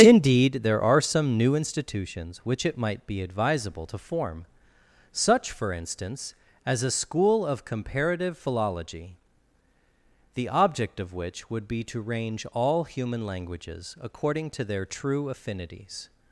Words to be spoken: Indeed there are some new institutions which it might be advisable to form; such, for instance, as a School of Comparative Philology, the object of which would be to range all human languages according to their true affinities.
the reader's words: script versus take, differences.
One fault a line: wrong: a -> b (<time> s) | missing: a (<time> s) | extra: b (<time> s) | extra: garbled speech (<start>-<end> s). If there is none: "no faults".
no faults